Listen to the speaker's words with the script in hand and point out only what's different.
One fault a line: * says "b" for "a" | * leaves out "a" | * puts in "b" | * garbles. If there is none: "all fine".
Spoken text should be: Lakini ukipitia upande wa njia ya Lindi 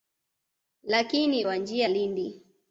* leaves out "ukipitia upande"
* leaves out "ya"